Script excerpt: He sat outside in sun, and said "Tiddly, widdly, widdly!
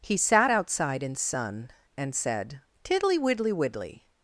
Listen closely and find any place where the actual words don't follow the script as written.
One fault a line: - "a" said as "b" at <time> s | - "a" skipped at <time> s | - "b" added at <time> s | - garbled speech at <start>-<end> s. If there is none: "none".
none